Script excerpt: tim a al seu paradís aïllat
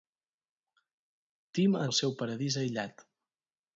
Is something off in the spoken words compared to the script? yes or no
no